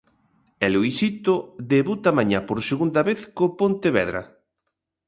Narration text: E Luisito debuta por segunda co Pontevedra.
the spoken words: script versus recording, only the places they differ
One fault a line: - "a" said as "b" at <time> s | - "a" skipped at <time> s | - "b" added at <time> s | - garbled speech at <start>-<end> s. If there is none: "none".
- "mañá" added at 2.2 s
- "vez" added at 3.1 s